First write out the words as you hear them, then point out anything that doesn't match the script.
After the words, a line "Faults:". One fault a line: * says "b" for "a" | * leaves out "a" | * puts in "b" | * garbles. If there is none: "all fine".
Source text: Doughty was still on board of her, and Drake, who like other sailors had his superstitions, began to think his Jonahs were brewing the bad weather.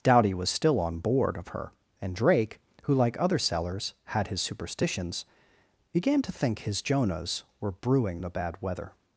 Doughty was still on board of her, and Drake, who like other sailors had his superstitions, began to think his Jonahs were brewing the bad weather.
Faults:
all fine